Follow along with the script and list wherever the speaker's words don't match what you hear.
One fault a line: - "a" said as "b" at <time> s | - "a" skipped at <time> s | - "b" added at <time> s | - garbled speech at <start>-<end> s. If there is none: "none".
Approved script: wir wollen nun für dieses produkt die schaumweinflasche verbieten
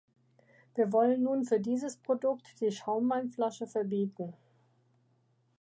none